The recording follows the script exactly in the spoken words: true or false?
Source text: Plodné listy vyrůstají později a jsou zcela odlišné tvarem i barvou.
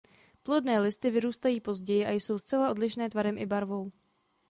true